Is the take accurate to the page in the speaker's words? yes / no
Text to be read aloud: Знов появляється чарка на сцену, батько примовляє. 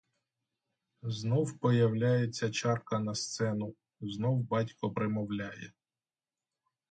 no